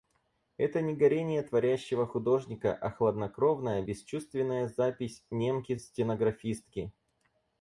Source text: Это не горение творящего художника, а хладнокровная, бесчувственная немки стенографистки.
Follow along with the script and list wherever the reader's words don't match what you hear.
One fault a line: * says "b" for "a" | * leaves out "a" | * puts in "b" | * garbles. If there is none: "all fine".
* puts in "запись"